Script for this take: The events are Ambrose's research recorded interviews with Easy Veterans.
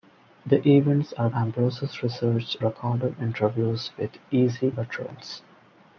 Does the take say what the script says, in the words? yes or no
yes